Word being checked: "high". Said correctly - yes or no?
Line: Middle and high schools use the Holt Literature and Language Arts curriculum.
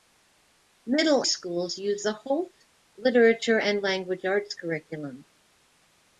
no